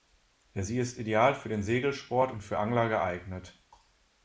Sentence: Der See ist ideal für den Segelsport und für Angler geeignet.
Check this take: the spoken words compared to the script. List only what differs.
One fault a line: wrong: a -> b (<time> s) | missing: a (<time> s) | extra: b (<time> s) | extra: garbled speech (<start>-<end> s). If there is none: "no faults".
no faults